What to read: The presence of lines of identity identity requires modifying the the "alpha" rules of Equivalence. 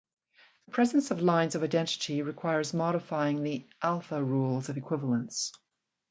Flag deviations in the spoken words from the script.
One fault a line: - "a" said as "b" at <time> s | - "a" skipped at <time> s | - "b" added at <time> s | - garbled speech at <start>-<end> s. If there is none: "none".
- "identity" skipped at 2.2 s
- "the" skipped at 3.6 s